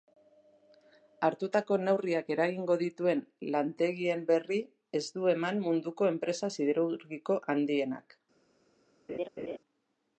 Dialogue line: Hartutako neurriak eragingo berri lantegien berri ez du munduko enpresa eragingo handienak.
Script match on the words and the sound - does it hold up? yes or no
no